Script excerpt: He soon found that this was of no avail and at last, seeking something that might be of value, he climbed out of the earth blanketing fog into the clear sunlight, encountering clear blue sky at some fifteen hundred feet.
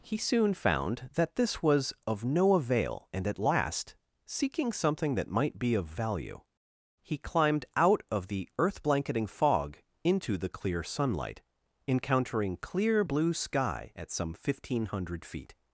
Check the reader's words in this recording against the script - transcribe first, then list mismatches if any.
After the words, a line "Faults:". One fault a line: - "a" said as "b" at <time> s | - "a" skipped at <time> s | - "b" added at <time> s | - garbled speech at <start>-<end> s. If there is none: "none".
He soon found that this was of no avail and at last, seeking something that might be of value, he climbed out of the earth blanketing fog into the clear sunlight, encountering clear blue sky at some fifteen hundred feet.
Faults:
none